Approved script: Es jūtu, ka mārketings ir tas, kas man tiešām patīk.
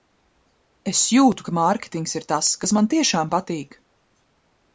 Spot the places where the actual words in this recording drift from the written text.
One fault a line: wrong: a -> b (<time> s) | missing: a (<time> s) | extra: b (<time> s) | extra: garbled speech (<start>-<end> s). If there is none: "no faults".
no faults